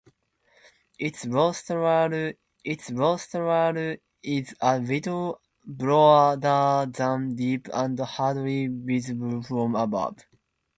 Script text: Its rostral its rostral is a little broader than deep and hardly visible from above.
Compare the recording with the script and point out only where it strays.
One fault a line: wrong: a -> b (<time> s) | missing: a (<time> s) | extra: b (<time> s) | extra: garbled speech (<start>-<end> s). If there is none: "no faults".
no faults